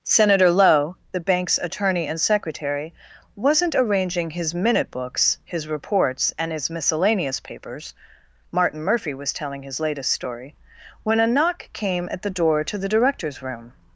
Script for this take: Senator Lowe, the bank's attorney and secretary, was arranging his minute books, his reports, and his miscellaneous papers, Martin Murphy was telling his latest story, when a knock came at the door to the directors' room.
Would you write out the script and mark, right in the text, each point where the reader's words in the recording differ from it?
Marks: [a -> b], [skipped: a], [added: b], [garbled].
Senator Lowe, the bank's attorney and secretary, [was -> wasn't] arranging his minute books, his reports, and his miscellaneous papers, Martin Murphy was telling his latest story, when a knock came at the door to the directors' room.